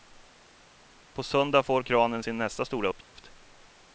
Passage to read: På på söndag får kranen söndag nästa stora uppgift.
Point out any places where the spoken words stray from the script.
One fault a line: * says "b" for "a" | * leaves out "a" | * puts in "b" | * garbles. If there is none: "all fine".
* leaves out "på"
* says "sin" for "söndag"